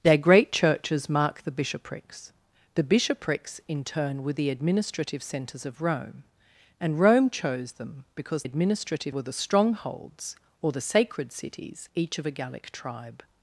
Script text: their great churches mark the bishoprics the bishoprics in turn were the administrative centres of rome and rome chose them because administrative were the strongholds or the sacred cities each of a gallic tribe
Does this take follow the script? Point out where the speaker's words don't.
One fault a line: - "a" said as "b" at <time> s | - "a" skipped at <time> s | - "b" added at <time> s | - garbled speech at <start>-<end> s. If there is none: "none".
none